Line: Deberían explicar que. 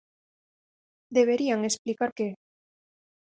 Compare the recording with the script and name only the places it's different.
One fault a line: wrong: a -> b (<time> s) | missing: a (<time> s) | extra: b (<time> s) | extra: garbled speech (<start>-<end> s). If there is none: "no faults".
no faults